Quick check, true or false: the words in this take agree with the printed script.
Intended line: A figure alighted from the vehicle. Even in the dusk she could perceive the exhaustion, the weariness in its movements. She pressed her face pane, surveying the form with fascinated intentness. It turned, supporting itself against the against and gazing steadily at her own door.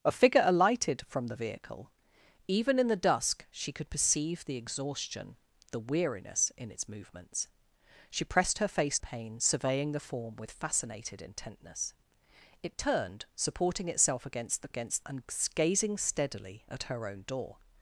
true